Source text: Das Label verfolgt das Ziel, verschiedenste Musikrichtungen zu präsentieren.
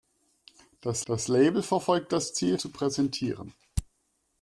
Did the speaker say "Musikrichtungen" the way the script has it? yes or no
no